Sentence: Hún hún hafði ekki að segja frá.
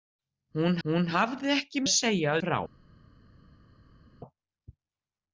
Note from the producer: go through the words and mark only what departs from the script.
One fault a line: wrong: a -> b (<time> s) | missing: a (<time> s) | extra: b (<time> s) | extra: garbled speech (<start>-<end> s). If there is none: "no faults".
no faults